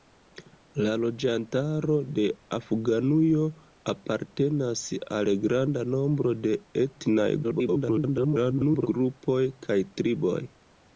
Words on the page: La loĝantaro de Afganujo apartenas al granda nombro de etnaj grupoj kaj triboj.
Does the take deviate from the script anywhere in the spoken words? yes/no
yes